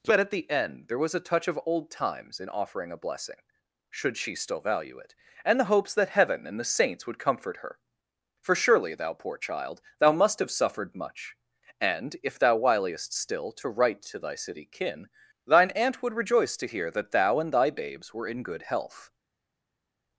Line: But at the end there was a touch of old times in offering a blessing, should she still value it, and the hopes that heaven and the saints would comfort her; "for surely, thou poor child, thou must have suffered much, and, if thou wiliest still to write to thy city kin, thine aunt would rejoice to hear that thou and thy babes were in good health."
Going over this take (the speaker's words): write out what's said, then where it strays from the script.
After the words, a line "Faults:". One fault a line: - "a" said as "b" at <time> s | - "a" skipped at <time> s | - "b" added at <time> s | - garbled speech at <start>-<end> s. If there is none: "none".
But at the end there was a touch of old times in offering a blessing, should she still value it, and the hopes that heaven and the saints would comfort her; "for surely, thou poor child, thou must have suffered much, and, if thou wiliest still to write to thy city kin, thine aunt would rejoice to hear that thou and thy babes were in good health."
Faults:
none